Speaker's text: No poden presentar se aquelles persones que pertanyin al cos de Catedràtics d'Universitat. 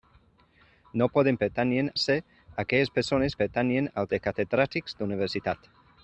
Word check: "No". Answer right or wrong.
right